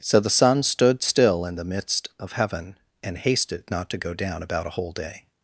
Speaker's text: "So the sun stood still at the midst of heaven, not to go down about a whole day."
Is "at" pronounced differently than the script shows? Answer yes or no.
yes